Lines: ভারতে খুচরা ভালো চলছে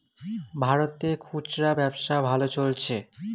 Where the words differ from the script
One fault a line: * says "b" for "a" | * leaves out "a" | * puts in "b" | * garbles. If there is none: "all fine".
* puts in "ব্যবসা"